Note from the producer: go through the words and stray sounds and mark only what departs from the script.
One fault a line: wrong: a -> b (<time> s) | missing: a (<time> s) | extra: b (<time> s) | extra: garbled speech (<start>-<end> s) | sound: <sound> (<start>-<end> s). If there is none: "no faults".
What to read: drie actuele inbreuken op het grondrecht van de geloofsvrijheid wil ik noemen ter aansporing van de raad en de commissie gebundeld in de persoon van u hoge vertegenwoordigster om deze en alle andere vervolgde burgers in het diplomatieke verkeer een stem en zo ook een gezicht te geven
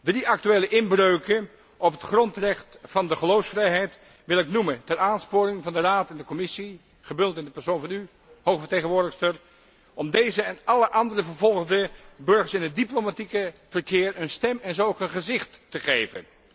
no faults